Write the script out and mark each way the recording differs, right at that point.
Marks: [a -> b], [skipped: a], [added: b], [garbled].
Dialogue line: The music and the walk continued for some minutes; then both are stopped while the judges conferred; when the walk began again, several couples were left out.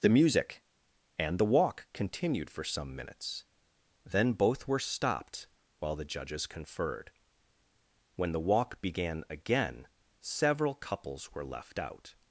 The music and the walk continued for some minutes; then both [are -> were] stopped while the judges conferred; when the walk began again, several couples were left out.